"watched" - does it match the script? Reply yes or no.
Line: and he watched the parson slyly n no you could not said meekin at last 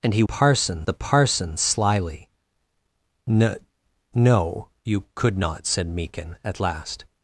no